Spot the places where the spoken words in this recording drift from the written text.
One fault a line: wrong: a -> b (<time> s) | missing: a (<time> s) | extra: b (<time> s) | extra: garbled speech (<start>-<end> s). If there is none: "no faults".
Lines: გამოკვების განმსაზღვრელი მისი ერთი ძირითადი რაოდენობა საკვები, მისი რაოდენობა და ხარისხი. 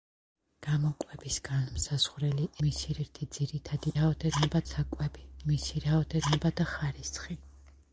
no faults